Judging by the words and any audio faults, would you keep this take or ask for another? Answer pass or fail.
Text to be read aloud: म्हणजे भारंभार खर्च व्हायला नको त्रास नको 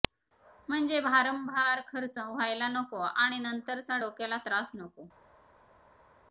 fail